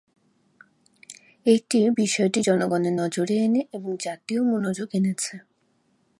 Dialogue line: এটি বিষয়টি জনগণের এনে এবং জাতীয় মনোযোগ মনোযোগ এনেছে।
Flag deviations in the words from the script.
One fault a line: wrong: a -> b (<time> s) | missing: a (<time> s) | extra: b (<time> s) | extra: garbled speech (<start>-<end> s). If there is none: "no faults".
extra: নজরে (2.9 s)
missing: মনোযোগ (4.9 s)